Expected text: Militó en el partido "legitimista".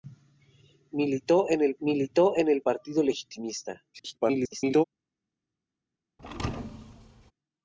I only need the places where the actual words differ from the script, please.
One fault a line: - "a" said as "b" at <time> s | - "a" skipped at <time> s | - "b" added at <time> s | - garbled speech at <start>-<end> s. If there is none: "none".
- "militó en el" added at 1.8 s
- garbled speech at 3.9-4.8 s